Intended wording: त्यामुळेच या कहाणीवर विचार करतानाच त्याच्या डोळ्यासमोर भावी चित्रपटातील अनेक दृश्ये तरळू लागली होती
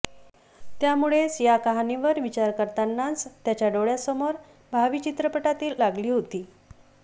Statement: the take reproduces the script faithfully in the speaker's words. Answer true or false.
false